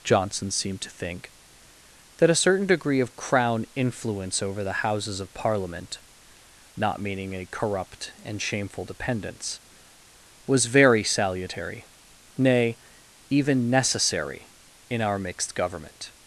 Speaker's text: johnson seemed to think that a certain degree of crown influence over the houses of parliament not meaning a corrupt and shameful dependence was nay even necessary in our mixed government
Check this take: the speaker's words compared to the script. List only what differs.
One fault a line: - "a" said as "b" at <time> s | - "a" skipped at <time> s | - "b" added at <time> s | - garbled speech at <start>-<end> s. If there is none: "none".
- "very salutary" added at 10.7 s